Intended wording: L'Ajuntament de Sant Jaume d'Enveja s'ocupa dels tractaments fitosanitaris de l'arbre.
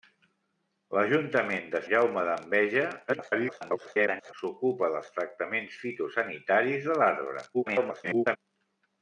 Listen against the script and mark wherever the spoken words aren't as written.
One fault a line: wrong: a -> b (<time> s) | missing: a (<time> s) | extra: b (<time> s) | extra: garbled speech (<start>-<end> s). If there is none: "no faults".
missing: Sant (1.8 s)
extra: garbled speech (3.1-4.3 s)
extra: garbled speech (7.5-8.4 s)